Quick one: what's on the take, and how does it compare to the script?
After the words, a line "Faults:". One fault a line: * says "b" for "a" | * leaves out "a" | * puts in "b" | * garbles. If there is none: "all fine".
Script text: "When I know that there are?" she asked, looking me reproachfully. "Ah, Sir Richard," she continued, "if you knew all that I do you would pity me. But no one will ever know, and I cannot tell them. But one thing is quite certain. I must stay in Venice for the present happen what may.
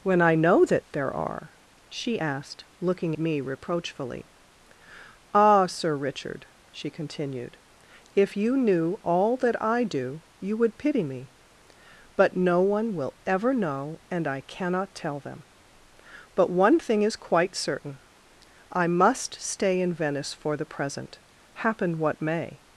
"When I know that there are?" she asked, looking me reproachfully. "Ah, Sir Richard," she continued, "if you knew all that I do you would pity me. But no one will ever know, and I cannot tell them. But one thing is quite certain. I must stay in Venice for the present happen what may.
Faults:
all fine